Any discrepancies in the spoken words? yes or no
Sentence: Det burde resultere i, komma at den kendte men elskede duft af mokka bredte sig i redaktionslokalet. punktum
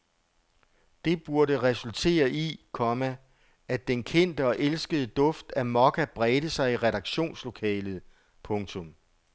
yes